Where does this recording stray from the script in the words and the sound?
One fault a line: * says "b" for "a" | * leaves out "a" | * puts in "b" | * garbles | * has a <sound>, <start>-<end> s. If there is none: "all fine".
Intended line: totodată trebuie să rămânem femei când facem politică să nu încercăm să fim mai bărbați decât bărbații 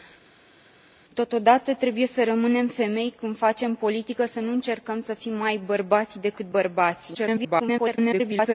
* garbles